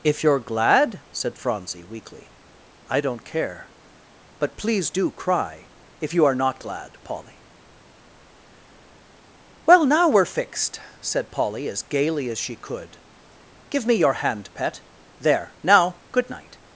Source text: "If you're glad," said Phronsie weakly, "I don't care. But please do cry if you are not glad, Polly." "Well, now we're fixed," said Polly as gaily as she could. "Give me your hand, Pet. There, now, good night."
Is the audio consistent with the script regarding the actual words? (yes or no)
yes